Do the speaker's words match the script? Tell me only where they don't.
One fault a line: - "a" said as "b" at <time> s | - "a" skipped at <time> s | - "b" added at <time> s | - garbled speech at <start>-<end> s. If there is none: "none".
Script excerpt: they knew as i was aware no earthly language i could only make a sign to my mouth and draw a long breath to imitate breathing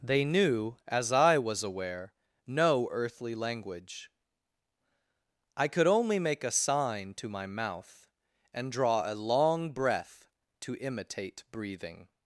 none